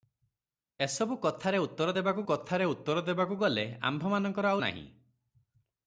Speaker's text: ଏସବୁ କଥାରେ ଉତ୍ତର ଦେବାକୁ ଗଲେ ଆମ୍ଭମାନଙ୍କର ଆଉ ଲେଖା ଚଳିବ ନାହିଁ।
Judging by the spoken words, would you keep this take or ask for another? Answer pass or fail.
fail